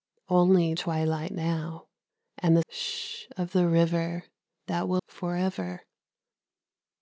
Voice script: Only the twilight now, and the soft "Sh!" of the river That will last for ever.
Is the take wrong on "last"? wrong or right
wrong